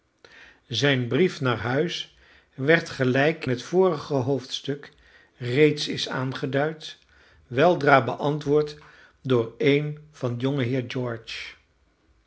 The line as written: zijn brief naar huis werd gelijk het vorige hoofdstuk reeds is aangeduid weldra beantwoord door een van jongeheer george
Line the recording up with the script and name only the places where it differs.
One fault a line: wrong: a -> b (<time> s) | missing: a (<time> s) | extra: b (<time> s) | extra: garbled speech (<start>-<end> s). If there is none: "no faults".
no faults